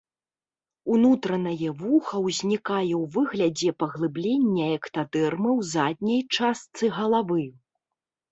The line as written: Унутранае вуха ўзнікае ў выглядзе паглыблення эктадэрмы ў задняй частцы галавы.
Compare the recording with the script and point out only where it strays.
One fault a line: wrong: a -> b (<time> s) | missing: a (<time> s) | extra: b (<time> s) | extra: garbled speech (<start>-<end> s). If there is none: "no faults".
no faults